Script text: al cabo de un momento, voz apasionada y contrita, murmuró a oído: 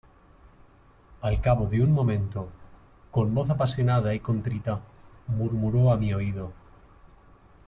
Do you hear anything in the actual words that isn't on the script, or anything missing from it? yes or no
yes